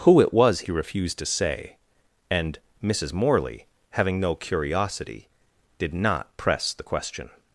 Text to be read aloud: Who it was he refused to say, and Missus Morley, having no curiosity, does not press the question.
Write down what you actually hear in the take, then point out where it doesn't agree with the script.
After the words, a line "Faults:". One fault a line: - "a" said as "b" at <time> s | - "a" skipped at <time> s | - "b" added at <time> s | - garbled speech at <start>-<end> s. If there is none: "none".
Who it was he refused to say, and Missus Morley, having no curiosity, did not press the question.
Faults:
- "does" said as "did" at 5.8 s